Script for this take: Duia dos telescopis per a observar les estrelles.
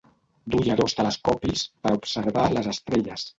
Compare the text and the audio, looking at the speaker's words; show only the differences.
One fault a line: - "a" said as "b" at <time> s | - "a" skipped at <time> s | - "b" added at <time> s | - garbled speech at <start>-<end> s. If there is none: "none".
none